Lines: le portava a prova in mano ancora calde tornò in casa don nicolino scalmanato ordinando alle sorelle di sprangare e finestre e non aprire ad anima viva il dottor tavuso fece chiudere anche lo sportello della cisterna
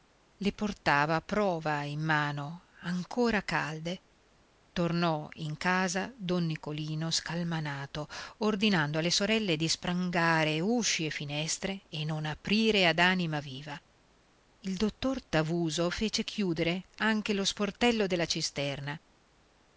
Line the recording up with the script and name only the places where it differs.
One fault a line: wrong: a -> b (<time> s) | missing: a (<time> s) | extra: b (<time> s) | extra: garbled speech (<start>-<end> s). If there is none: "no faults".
extra: usci (10.6 s)